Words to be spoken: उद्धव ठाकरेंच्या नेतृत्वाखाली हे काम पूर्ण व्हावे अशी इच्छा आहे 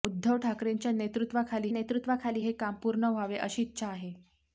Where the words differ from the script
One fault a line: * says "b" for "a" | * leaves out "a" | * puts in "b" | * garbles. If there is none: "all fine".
* puts in "नेतृत्वाखाली"